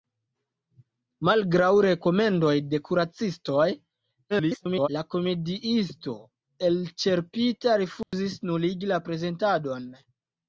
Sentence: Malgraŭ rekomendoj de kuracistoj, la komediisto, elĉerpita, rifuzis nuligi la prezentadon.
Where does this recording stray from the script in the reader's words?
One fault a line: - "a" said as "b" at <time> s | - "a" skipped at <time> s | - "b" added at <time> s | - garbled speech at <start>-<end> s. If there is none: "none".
- garbled speech at 4.3-4.9 s